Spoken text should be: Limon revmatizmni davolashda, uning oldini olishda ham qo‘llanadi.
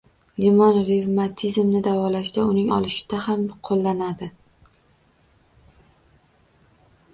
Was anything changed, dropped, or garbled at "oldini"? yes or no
yes